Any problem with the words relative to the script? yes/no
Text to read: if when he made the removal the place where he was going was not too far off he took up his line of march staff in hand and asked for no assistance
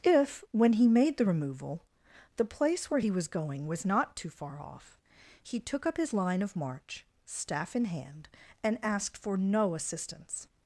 no